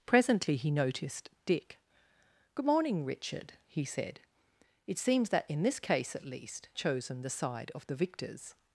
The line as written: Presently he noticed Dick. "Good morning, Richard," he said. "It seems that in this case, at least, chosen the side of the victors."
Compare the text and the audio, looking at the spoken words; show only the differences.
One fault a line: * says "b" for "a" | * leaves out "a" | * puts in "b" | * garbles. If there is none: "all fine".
all fine